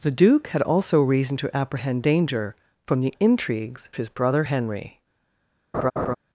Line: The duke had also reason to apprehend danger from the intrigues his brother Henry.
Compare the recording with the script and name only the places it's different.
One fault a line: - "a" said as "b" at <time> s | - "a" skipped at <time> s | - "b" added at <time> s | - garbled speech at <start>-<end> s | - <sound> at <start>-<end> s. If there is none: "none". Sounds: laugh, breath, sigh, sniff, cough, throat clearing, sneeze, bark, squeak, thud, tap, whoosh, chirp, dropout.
- laugh at 5.7-6.1 s